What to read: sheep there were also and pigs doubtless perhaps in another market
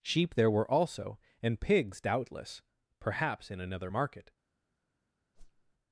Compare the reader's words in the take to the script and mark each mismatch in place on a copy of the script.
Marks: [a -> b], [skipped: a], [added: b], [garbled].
sheep there were also and pigs doubtless perhaps in another market